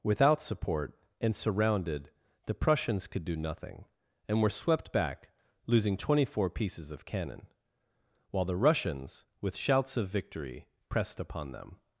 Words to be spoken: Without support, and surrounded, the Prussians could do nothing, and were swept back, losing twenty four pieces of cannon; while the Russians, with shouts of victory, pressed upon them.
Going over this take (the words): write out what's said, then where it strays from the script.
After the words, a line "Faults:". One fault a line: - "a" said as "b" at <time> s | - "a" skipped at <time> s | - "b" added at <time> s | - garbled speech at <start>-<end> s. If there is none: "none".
Without support, and surrounded, the Prussians could do nothing, and were swept back, losing twenty four pieces of cannon; while the Russians, with shouts of victory, pressed upon them.
Faults:
none